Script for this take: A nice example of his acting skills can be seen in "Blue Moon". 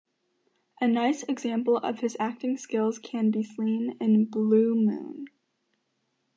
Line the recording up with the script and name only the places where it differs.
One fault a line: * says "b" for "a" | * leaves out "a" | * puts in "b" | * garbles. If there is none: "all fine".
all fine